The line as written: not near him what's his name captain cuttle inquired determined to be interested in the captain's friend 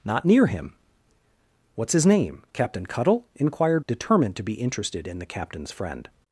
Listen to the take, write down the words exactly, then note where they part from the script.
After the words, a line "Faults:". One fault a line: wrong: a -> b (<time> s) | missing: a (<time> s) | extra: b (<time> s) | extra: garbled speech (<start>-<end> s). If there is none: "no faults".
not near him what's his name captain cuttle inquired determined to be interested in the captain's friend
Faults:
no faults